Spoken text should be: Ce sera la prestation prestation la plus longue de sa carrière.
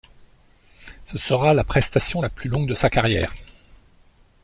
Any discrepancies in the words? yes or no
yes